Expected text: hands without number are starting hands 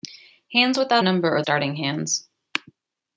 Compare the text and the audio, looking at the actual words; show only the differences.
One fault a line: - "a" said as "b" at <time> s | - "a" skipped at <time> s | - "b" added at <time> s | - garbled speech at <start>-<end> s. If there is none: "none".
none